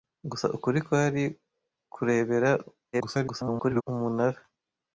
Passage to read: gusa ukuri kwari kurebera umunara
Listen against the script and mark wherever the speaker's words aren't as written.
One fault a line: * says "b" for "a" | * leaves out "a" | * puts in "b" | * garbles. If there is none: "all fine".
* garbles